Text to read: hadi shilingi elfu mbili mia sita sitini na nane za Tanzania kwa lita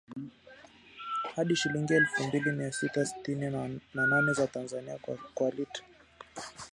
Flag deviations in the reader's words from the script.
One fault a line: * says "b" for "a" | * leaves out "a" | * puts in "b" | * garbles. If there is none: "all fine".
all fine